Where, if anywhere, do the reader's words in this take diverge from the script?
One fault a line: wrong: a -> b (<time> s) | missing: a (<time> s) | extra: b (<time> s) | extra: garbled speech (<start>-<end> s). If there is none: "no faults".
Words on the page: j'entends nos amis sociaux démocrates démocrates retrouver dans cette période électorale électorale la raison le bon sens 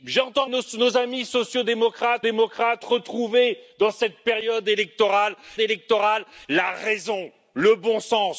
no faults